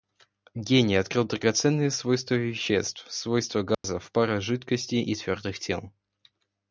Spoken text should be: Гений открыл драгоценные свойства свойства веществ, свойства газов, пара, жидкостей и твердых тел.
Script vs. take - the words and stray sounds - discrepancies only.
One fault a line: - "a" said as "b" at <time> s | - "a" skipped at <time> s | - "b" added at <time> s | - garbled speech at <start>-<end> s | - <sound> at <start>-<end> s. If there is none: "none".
- "свойства" skipped at 2.3 s
- dropout at 3.7-3.8 s